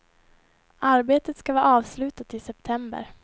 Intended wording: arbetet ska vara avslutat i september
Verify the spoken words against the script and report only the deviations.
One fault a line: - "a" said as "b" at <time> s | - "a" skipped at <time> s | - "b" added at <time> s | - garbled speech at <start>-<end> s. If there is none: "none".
none